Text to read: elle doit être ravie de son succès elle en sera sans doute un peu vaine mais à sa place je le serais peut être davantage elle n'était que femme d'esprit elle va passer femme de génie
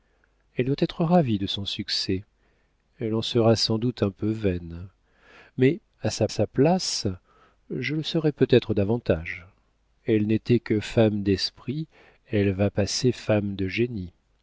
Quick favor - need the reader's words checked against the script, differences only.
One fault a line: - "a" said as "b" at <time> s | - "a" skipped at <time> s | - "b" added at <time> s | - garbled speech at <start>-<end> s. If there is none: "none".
- "sa" added at 6.3 s